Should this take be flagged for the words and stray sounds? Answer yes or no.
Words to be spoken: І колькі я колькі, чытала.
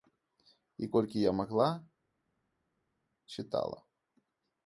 yes